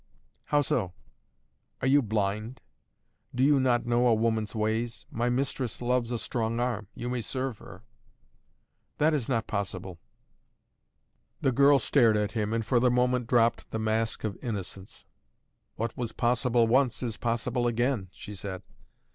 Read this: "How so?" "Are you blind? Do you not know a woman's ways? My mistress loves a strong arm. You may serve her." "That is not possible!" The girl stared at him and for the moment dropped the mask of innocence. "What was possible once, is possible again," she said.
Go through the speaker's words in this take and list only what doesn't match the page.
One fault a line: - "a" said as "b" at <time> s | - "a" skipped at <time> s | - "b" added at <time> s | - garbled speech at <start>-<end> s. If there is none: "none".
none